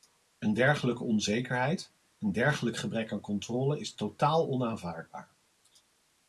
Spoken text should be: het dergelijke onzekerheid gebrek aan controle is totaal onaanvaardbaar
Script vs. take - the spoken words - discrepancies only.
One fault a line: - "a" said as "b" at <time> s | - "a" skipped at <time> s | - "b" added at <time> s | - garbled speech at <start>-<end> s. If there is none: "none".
- "het" said as "een" at 0.4 s
- "een dergelijk" added at 2.2 s